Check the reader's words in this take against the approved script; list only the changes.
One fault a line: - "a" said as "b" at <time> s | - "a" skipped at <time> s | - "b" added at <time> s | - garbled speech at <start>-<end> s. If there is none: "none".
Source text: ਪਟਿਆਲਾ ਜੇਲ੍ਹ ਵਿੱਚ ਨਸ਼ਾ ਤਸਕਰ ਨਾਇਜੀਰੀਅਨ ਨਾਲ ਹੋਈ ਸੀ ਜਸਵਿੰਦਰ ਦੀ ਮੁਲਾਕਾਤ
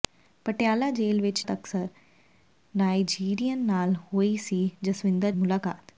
- "ਨਸ਼ਾ" skipped at 1.4 s
- "ਦੀ" skipped at 5.3 s